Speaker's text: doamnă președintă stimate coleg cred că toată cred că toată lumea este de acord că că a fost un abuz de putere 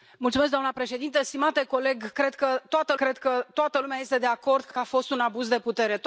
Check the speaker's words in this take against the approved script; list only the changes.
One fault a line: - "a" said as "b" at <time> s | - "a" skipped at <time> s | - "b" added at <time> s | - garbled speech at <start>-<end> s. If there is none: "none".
none